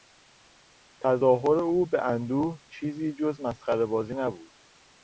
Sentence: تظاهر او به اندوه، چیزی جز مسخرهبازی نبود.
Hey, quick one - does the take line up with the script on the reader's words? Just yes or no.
yes